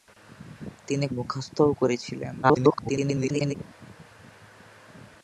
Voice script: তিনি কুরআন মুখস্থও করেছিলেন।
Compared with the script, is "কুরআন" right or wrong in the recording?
wrong